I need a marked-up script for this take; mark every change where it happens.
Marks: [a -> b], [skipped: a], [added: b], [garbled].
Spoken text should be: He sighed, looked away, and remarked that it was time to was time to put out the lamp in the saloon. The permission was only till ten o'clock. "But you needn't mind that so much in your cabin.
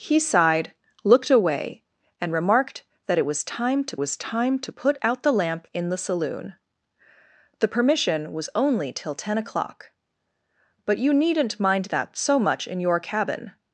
He sighed, looked away, and remarked that it was time to was time to put out the lamp in the saloon. The permission was only till ten o'clock. "But you needn't mind that so much in your cabin.